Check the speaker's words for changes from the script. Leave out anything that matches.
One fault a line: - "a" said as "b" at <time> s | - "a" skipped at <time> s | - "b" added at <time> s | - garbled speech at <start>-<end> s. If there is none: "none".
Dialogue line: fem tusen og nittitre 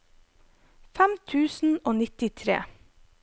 none